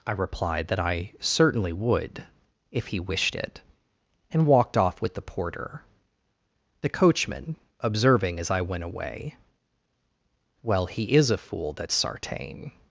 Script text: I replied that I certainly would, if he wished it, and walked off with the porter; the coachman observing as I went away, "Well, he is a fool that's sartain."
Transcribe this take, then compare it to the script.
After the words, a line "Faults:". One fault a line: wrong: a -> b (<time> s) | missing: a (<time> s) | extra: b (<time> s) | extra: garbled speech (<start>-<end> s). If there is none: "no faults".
I replied that I certainly would, if he wished it, and walked off with the porter; the coachman observing as I went away, "Well, he is a fool that's sartain."
Faults:
no faults